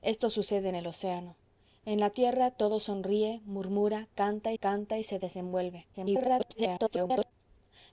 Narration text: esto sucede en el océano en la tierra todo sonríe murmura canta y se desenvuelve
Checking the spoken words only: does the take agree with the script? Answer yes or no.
no